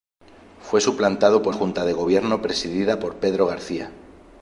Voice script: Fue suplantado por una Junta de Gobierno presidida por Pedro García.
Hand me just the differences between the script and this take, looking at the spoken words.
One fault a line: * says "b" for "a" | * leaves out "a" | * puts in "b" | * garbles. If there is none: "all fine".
* leaves out "una"